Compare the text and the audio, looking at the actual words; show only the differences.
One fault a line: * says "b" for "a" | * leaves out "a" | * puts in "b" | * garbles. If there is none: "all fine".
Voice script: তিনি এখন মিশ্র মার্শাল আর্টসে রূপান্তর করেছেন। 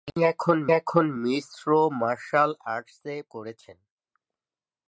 * puts in "এখন"
* leaves out "রূপান্তর"